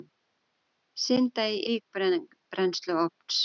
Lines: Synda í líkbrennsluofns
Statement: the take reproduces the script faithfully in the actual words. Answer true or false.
true